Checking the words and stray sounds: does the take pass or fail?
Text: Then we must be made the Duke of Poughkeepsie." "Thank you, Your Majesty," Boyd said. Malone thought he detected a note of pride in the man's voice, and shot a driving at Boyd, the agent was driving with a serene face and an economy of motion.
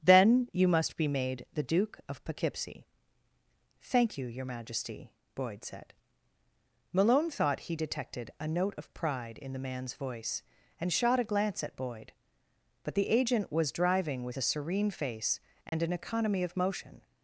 fail